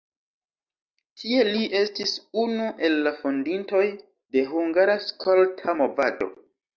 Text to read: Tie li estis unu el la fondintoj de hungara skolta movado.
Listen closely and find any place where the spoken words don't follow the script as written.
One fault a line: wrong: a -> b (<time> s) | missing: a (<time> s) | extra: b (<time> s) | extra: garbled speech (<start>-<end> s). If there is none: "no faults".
no faults